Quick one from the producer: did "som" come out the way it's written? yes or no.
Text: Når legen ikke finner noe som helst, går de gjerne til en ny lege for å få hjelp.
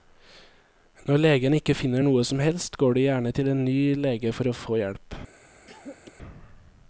yes